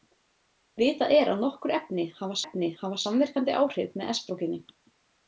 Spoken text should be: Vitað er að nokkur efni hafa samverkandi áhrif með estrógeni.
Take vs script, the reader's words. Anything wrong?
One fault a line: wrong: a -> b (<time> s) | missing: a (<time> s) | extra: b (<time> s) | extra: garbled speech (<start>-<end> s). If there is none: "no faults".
extra: efni hafa (2.4 s)